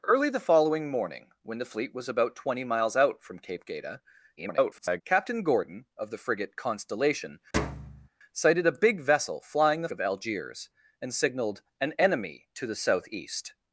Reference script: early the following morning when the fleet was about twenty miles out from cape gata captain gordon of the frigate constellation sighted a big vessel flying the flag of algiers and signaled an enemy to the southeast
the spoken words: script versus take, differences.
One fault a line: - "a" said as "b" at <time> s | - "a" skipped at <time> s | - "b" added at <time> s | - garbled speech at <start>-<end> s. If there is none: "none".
- garbled speech at 4.4-5.0 s
- "flag" skipped at 9.9 s